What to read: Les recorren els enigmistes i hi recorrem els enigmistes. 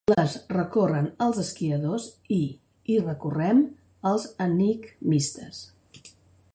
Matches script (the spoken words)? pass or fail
fail